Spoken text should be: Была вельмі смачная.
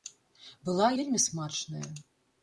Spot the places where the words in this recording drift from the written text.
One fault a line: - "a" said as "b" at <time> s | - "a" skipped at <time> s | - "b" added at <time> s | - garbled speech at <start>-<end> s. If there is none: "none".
none